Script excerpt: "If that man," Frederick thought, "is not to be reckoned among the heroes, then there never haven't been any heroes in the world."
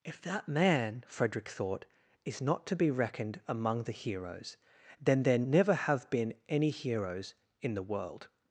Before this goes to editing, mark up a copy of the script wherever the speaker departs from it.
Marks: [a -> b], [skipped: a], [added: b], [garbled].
"If that man," Frederick thought, "is not to be reckoned among the heroes, then there never [haven't -> have] been any heroes in the world."